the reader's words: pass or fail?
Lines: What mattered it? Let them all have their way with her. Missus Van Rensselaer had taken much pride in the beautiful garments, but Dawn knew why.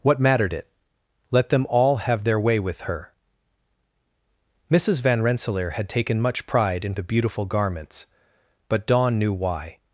pass